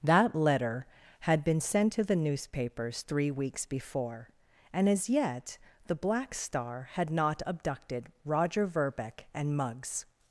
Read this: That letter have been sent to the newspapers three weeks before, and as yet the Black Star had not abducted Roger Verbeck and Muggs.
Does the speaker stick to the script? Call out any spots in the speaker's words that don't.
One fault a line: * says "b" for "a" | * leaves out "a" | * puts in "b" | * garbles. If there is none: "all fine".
* says "had" for "have"